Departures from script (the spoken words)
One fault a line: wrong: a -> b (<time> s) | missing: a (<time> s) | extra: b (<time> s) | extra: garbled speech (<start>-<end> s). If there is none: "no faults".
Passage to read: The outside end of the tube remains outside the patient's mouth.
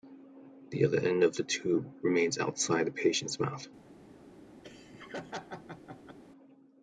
wrong: outside -> other (0.8 s)